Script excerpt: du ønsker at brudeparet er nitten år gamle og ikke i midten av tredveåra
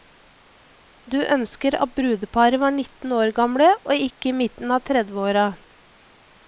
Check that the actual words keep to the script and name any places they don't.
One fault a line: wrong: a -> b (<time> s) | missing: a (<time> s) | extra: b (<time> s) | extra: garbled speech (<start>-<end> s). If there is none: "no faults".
wrong: er -> var (2.6 s)